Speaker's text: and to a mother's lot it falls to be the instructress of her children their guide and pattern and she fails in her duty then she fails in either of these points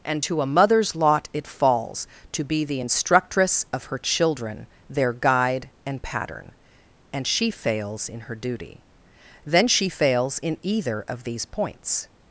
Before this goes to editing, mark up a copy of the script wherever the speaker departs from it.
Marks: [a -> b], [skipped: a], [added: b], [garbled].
and to a mother's lot it falls to be the instructress of her children their guide and pattern and she fails in her duty then she fails in either of these points